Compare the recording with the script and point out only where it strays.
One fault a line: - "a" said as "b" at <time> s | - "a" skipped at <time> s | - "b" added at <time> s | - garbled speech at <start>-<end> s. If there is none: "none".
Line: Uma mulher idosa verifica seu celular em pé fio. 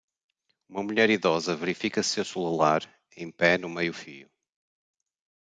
- "no meio" added at 3.6 s